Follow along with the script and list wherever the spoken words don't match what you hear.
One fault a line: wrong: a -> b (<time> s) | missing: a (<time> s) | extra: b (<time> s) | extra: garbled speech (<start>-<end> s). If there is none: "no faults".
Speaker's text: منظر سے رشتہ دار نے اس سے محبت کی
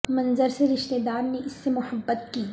no faults